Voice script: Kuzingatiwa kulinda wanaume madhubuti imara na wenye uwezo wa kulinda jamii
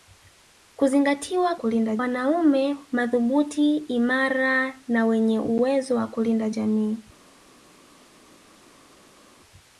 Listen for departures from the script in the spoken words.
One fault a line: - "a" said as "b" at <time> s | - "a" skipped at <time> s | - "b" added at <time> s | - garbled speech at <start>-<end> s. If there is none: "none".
none